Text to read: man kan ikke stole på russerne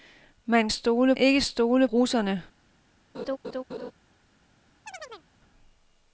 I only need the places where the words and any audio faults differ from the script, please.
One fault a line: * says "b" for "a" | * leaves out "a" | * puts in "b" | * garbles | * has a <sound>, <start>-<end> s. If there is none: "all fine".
* says "stole" for "kan"
* leaves out "på"
* has a laugh, 3.1-3.9 s
* has a chirp, 4.9-5.3 s